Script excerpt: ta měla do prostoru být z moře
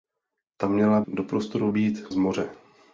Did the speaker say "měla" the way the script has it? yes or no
yes